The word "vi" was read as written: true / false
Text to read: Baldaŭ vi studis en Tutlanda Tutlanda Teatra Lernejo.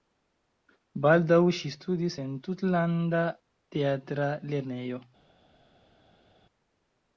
false